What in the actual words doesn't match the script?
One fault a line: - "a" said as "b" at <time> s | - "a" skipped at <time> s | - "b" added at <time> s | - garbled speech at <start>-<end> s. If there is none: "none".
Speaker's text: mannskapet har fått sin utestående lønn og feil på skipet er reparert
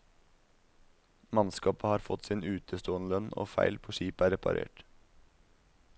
none